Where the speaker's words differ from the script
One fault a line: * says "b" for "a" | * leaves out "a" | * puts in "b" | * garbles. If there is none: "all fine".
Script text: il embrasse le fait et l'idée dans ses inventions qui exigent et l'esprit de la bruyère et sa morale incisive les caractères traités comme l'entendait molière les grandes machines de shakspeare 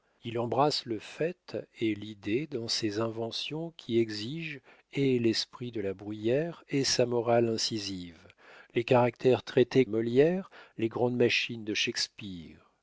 * leaves out "comme l'entendait"